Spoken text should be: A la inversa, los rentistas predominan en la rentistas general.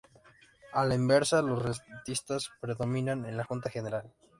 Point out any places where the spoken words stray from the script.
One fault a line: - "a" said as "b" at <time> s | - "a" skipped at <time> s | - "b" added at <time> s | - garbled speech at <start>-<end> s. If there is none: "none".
- "rentistas" said as "junta" at 3.4 s